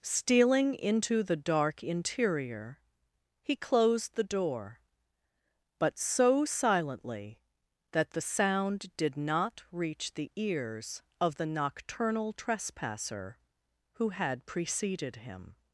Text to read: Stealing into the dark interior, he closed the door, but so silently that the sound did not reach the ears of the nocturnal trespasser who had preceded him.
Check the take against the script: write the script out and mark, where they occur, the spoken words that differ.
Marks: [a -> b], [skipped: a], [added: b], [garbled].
Stealing into the dark interior, he closed the door, but so silently that the sound did not reach the ears of the nocturnal trespasser who had preceded him.